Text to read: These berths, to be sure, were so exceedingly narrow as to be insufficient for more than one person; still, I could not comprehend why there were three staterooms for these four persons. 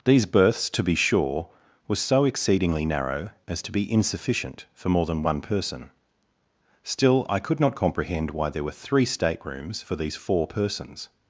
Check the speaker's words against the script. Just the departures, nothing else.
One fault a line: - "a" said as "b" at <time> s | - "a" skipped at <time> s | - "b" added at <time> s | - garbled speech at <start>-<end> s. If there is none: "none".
none